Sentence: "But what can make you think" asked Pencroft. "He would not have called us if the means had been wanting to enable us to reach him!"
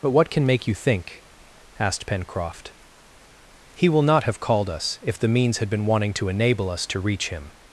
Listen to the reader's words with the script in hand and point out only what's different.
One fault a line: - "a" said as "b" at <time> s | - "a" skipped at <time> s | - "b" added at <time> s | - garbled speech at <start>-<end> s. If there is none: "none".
- "would" said as "will" at 3.9 s